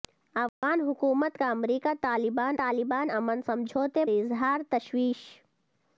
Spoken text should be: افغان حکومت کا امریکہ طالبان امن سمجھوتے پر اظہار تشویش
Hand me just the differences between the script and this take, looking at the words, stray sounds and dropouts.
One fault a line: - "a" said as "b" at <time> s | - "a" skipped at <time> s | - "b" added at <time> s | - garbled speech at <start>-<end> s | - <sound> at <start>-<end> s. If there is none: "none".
- dropout at 0.5-0.6 s
- "طالبان" added at 2.6 s
- "پر" skipped at 4.0 s